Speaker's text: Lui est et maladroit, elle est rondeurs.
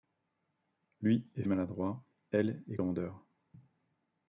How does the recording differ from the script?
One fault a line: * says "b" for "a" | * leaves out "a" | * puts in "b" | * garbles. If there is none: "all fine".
all fine